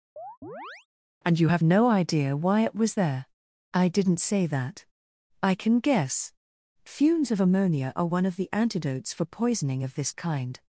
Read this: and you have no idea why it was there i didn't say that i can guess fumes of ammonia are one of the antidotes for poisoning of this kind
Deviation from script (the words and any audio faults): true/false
true